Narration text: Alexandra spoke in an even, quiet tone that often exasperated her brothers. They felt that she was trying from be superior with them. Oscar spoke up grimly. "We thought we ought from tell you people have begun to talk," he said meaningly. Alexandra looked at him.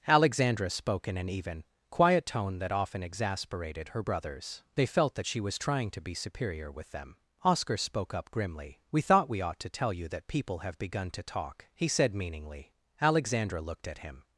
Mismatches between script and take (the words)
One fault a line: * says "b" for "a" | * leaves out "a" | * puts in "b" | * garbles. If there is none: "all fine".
* says "to" for "from"
* says "to" for "from"
* puts in "that"